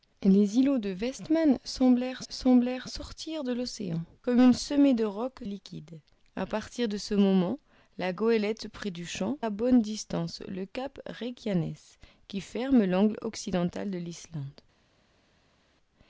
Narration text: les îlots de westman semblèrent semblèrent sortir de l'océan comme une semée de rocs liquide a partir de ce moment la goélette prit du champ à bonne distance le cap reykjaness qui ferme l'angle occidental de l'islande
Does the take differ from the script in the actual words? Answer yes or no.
no